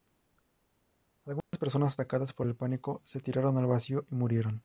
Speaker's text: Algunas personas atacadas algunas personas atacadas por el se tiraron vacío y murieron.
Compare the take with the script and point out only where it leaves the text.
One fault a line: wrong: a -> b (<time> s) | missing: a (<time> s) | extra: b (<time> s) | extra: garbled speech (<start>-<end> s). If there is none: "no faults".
missing: algunas personas atacadas (2.3 s)
extra: pánico (2.6 s)
extra: al (3.6 s)